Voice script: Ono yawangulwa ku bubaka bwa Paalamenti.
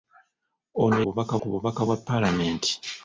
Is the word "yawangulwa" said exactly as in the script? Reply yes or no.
no